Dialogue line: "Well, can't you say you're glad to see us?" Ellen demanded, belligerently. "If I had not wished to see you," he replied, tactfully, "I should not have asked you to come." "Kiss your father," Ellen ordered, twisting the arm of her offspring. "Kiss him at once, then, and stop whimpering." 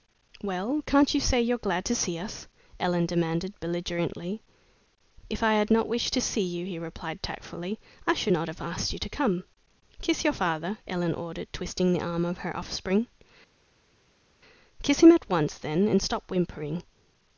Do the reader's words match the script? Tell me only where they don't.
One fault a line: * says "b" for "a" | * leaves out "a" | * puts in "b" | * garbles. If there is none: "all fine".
all fine